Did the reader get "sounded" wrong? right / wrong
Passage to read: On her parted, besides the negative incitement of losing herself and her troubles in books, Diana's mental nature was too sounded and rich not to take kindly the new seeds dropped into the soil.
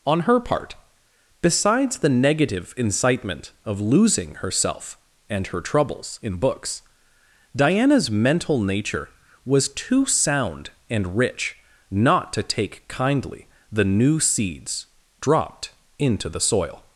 wrong